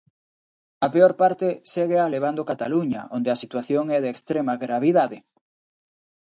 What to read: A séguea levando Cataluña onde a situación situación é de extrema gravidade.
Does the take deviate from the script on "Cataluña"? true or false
false